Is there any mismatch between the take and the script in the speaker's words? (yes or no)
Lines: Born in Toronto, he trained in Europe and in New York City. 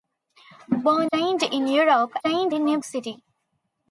yes